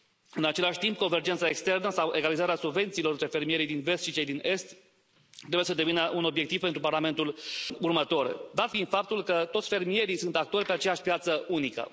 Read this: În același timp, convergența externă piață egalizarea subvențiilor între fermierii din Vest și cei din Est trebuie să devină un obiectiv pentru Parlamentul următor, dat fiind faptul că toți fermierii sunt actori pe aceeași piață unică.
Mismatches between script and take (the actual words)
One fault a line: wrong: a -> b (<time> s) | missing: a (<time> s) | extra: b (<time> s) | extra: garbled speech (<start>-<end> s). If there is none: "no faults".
wrong: piață -> sau (1.9 s)